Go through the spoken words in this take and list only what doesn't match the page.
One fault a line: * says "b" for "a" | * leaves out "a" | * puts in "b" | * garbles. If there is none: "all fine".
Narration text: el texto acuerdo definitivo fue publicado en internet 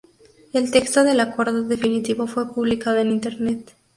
* puts in "del"